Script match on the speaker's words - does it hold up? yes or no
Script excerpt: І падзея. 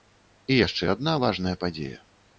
no